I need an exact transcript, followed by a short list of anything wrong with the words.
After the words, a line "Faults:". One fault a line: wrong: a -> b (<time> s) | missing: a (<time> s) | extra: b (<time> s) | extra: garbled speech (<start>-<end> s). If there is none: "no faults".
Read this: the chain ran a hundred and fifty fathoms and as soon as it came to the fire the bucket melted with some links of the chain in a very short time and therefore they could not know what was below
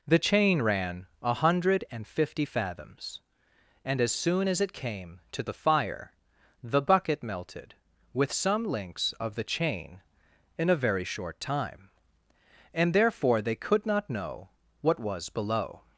the chain ran a hundred and fifty fathoms and as soon as it came to the fire the bucket melted with some links of the chain in a very short time and therefore they could not know what was below
Faults:
no faults